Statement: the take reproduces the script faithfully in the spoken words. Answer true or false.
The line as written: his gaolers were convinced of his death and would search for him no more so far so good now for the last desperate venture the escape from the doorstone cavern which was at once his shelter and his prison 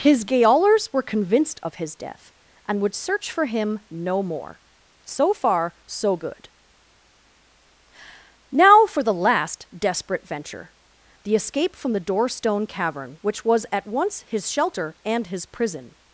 true